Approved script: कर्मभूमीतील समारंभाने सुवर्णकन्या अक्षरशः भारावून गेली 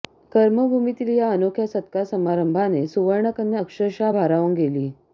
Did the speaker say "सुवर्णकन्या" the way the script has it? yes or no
yes